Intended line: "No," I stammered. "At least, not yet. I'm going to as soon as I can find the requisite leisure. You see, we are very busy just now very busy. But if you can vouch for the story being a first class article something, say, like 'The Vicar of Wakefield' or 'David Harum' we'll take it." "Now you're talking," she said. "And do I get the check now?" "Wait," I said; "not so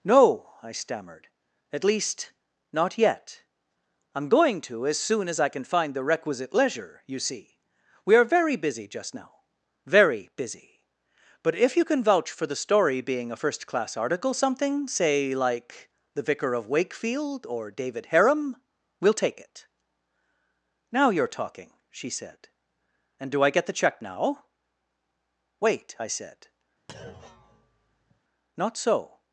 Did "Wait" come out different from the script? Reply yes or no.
no